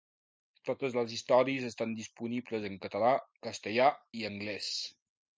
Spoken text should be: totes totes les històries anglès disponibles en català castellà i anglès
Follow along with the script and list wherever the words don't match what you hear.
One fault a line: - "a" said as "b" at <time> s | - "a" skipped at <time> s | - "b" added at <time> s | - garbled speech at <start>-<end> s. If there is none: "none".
- "totes" skipped at 0.9 s
- "anglès" said as "estan" at 1.7 s